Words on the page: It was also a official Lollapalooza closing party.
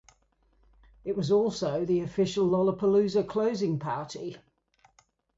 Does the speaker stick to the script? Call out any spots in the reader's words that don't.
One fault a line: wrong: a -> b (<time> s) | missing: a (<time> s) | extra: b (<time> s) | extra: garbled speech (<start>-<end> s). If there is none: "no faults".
wrong: a -> the (1.8 s)